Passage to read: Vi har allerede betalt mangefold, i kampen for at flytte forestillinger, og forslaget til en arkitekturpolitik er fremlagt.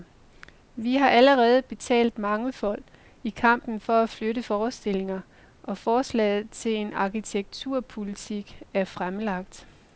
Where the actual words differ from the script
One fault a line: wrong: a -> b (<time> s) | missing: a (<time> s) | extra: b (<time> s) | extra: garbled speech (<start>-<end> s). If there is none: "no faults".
no faults